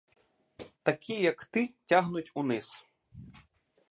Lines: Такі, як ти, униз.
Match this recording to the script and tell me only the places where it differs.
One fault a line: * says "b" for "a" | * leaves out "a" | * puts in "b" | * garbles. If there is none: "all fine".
* puts in "тягнуть"